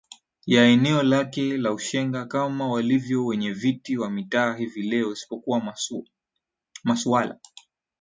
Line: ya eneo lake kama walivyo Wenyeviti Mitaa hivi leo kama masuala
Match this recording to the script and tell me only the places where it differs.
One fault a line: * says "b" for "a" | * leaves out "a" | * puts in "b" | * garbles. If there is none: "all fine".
* puts in "la Ushenga"
* puts in "wa"
* says "isipokuwa" for "kama"